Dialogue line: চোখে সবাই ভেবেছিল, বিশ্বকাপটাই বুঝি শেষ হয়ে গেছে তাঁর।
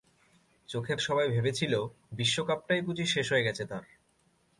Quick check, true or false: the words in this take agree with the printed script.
true